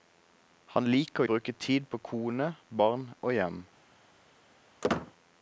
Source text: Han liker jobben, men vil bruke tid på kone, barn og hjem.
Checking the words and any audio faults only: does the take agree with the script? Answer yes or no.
no